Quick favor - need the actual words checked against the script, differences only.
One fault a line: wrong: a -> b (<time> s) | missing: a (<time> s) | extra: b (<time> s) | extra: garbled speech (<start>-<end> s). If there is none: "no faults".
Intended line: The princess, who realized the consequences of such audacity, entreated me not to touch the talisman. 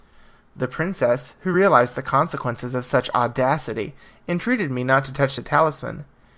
no faults